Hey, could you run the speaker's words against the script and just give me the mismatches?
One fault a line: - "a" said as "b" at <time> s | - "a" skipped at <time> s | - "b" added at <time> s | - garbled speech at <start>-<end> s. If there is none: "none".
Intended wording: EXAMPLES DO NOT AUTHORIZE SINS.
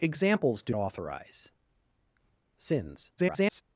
- "NOT" skipped at 0.7 s
- garbled speech at 3.2-3.6 s